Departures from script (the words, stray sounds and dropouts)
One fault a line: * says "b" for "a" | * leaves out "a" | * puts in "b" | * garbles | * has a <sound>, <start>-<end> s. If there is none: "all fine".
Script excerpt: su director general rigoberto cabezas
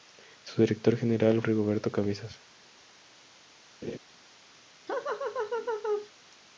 * has a laugh, 3.8-4.0 s
* has a laugh, 4.9-6.1 s